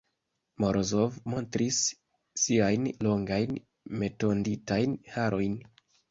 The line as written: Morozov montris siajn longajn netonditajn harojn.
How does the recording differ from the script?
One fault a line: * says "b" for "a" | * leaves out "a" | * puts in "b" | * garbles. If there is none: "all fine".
all fine